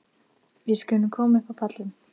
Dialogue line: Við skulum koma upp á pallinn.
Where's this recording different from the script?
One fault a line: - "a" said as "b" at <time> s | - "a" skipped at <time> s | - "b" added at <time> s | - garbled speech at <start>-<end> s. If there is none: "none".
none